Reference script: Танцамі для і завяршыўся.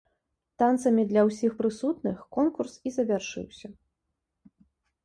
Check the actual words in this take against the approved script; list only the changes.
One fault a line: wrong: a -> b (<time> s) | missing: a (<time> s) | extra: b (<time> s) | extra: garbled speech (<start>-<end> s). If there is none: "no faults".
extra: ўсіх прысутных конкурс (1.3 s)